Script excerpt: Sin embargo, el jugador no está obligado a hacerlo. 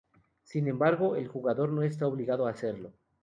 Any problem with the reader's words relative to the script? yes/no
no